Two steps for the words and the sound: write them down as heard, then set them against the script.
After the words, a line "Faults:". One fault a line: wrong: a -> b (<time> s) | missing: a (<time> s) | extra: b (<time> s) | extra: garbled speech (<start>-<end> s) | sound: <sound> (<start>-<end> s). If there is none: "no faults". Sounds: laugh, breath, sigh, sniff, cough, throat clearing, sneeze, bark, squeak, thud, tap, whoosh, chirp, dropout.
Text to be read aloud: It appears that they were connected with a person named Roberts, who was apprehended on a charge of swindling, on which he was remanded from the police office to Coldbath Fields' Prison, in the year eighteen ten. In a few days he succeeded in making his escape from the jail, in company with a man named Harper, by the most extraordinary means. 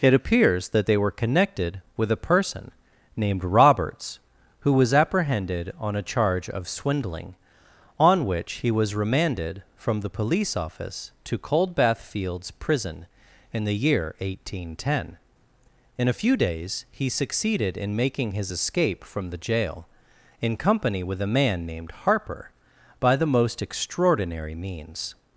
It appears that they were connected with a person named Roberts, who was apprehended on a charge of swindling, on which he was remanded from the police office to Coldbath Fields' Prison, in the year eighteen ten. In a few days he succeeded in making his escape from the jail, in company with a man named Harper, by the most extraordinary means.
Faults:
no faults